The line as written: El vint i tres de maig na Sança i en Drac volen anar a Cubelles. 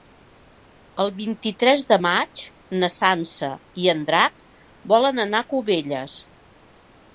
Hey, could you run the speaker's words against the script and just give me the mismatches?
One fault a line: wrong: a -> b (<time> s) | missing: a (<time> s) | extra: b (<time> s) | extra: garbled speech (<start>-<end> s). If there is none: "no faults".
no faults